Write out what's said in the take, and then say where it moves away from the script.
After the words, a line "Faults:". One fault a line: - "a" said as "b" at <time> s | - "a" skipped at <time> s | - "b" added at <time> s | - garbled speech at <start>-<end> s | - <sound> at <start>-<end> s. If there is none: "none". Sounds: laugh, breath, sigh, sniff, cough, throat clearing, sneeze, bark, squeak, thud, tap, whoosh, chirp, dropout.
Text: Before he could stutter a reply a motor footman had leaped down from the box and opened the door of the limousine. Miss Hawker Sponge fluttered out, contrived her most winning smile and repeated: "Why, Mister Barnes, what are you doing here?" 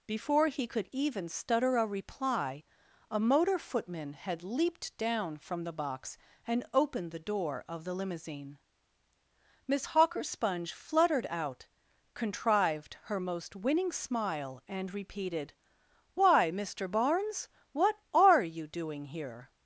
Before he could even stutter a reply a motor footman had leaped down from the box and opened the door of the limousine. Miss Hawker Sponge fluttered out, contrived her most winning smile and repeated: "Why, Mister Barnes, what are you doing here?"
Faults:
- "even" added at 0.9 s